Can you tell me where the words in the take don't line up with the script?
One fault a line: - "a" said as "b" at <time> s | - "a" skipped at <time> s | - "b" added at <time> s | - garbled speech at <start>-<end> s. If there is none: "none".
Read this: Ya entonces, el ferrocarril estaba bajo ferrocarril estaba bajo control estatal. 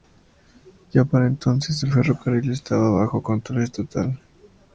- "para" added at 1.1 s
- "ferrocarril estaba bajo" skipped at 3.2 s